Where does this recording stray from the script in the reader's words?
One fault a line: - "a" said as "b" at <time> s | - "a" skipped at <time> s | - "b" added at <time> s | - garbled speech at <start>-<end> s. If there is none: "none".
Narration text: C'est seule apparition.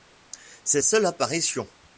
none